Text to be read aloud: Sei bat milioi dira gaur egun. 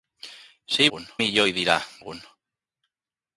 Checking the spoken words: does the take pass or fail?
fail